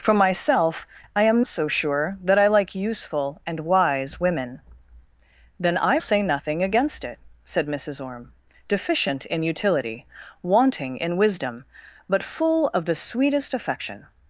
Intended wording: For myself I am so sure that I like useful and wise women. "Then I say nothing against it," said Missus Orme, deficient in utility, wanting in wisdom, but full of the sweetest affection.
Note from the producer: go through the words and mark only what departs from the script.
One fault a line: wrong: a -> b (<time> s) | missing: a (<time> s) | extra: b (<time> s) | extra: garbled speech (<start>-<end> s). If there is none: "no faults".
no faults